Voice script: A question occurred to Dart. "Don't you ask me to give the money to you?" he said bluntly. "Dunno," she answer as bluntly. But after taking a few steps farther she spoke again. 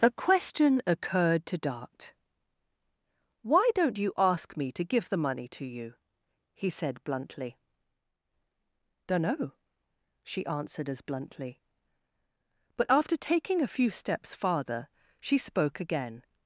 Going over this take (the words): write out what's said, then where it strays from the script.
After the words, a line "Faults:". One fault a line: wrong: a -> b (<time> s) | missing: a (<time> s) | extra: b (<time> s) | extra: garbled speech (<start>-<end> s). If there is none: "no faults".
A question occurred to Dart. "Why don't you ask me to give the money to you?" he said bluntly. "Dunno," she answered as bluntly. But after taking a few steps farther she spoke again.
Faults:
extra: Why (3.4 s)
wrong: answer -> answered (10.5 s)